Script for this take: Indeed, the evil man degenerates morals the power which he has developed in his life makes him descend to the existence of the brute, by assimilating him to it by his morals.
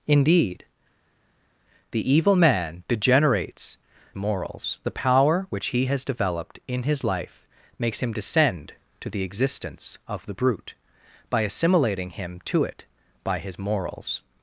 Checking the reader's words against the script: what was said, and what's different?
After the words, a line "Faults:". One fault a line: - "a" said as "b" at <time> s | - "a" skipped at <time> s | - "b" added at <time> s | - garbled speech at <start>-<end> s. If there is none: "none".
Indeed, the evil man degenerates morals the power which he has developed in his life makes him descend to the existence of the brute, by assimilating him to it by his morals.
Faults:
none